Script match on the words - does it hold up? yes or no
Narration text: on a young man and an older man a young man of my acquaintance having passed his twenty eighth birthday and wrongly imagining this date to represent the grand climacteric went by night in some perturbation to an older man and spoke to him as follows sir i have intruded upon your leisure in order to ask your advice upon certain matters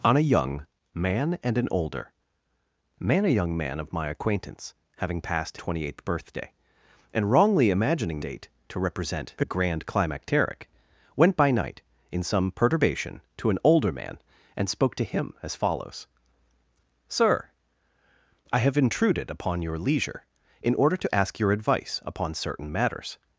no